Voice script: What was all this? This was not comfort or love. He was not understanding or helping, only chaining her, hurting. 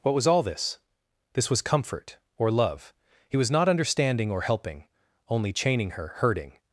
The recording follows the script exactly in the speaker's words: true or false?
false